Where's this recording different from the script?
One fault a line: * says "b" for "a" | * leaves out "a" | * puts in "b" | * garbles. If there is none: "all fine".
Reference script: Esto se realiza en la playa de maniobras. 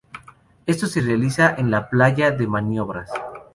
all fine